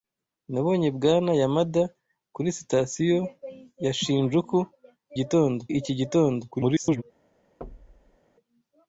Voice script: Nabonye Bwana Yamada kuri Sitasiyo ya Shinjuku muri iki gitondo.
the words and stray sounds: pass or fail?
fail